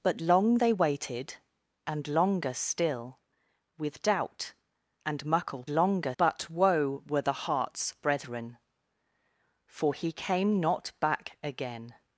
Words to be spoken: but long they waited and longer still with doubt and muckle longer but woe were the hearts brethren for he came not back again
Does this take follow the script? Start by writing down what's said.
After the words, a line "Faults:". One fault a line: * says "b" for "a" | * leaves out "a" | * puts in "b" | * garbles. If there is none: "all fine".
but long they waited and longer still with doubt and muckle longer but woe were the hearts brethren for he came not back again
Faults:
all fine